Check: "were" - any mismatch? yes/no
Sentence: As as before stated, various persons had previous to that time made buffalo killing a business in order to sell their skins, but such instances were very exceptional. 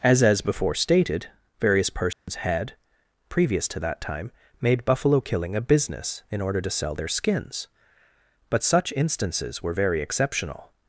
no